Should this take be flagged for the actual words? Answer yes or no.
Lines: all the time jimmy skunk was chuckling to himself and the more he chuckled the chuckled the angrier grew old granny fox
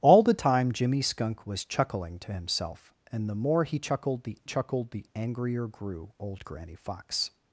no